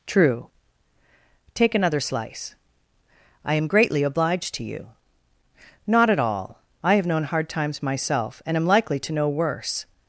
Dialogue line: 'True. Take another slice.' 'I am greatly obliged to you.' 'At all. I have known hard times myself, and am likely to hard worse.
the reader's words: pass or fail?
fail